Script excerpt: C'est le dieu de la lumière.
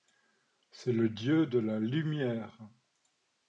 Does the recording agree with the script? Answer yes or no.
yes